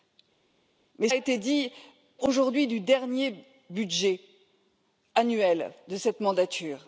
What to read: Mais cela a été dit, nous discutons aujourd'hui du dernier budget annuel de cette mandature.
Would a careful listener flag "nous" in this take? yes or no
yes